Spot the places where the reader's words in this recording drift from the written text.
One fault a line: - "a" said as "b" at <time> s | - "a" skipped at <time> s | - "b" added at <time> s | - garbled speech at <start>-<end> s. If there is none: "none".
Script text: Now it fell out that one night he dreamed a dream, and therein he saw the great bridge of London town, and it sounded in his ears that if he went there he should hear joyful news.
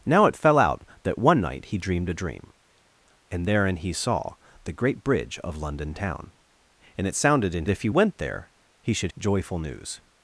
- "his ears that" skipped at 7.6 s
- "hear" skipped at 9.1 s